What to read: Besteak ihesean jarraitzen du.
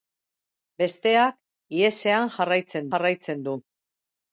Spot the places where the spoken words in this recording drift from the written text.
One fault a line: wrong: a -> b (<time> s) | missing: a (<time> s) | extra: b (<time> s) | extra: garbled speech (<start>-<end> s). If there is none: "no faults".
extra: jarraitzen (2.9 s)